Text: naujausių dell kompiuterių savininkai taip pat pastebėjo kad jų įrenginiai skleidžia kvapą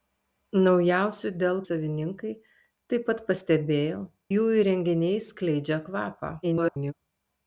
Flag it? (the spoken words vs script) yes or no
yes